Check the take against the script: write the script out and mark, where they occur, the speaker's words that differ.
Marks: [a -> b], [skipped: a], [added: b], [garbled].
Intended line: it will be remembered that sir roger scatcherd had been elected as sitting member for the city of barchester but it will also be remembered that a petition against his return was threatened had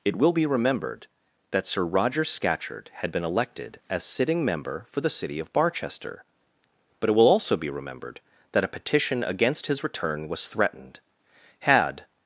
it will be remembered that sir roger scatcherd had been elected as sitting member for the city of barchester but it will also be remembered that a petition against his return was threatened had